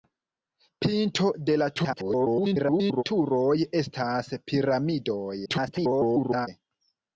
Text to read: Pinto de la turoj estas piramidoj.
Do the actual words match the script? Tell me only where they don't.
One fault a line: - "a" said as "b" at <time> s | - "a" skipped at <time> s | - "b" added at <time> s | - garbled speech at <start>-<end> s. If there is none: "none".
- garbled speech at 1.7-3.0 s
- garbled speech at 5.5-6.5 s